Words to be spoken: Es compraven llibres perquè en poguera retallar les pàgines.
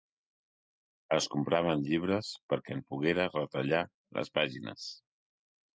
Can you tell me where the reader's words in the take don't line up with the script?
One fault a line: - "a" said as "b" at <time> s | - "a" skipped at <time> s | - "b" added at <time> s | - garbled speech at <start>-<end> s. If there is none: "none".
none